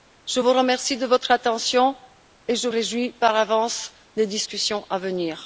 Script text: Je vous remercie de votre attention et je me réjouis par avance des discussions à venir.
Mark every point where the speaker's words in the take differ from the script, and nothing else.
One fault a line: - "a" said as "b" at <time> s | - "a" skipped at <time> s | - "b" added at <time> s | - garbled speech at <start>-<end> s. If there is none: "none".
- "me" skipped at 2.7 s